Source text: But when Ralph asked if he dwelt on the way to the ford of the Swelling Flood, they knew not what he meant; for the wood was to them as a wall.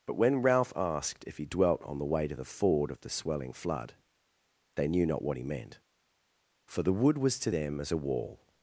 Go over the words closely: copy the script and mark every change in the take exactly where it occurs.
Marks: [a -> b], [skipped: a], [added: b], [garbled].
But when Ralph asked if he dwelt on the way to the ford of the Swelling Flood, they knew not what he meant; for the wood was to them as a wall.